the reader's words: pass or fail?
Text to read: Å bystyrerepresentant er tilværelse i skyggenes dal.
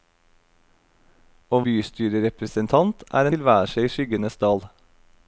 pass